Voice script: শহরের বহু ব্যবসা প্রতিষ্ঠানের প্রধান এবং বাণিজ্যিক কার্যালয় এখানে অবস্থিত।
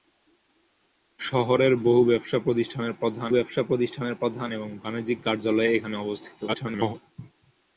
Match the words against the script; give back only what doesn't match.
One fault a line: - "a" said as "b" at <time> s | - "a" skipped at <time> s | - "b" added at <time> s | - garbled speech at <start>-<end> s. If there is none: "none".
- "ব্যবসা প্রতিষ্ঠানের প্রধান" added at 3.3 s
- garbled speech at 6.5-6.9 s